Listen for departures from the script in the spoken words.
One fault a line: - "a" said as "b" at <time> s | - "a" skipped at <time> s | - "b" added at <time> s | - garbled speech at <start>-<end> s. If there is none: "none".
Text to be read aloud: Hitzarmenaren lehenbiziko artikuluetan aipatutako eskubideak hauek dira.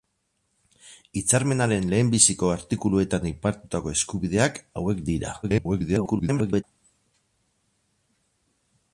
- garbled speech at 5.4-6.6 s